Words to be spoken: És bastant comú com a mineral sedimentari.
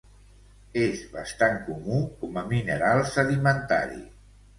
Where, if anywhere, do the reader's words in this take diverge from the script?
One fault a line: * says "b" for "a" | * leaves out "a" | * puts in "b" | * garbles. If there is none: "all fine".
all fine